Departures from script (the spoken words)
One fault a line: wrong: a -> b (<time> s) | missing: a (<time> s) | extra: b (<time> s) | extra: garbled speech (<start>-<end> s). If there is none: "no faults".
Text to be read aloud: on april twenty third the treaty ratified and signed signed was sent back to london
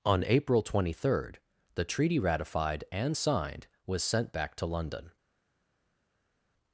missing: signed (3.7 s)